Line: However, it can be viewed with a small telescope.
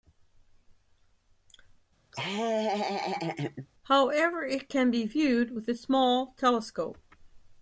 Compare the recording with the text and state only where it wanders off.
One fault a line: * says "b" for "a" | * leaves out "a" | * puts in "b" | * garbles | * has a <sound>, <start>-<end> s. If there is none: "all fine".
* has a laugh, 2.1-3.7 s